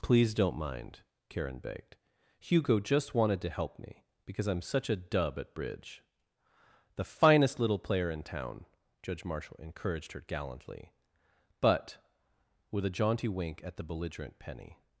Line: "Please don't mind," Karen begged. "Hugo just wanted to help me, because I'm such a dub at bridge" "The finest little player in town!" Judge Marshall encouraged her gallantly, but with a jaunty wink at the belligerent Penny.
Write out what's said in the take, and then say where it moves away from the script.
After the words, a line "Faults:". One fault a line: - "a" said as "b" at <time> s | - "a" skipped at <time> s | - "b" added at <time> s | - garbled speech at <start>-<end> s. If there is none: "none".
"Please don't mind," Karen begged. "Hugo just wanted to help me, because I'm such a dub at bridge" "The finest little player in town!" Judge Marshall encouraged her gallantly, but with a jaunty wink at the belligerent Penny.
Faults:
none